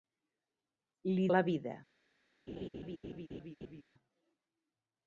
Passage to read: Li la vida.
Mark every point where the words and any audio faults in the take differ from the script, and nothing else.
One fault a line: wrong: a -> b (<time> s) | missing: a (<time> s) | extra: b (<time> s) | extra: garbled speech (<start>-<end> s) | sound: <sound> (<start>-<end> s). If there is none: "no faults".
sound: laugh (2.5-3.8 s)